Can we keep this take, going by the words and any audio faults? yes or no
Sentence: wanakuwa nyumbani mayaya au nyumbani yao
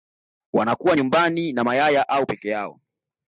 no